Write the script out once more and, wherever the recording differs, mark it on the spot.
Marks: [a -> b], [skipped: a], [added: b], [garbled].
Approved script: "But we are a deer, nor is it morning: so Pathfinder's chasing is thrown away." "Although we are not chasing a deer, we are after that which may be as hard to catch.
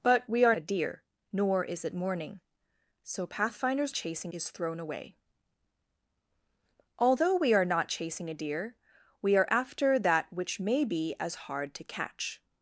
"But we are a deer, nor is it morning: so Pathfinder's chasing is thrown away." "Although we are not chasing a deer, we are after that which may be as hard to catch.